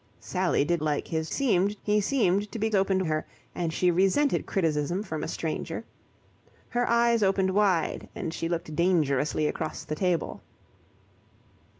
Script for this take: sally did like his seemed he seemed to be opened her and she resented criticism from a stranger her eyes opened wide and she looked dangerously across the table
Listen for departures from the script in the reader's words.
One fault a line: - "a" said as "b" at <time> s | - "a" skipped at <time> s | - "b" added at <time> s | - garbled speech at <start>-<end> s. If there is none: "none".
none